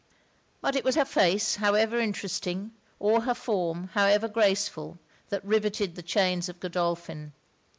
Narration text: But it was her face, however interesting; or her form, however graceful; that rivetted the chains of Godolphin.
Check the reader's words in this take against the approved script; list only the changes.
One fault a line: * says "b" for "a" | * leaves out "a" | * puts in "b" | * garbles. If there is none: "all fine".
all fine